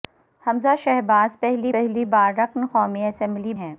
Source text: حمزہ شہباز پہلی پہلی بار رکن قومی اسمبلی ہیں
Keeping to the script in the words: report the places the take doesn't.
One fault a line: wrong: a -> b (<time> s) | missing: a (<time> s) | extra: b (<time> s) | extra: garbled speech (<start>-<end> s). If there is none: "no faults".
no faults